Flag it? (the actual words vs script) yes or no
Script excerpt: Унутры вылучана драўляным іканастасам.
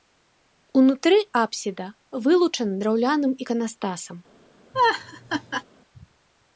yes